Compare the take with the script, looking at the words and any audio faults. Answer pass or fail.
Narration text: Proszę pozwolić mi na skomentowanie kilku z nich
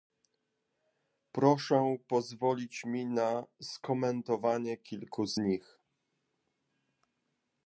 pass